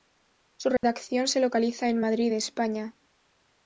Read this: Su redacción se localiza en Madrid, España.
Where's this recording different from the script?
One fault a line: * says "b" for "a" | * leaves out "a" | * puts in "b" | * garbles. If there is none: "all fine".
all fine